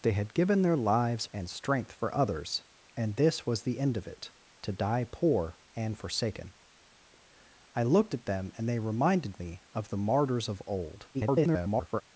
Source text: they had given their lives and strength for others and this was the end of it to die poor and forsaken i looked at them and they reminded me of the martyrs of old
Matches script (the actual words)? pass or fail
fail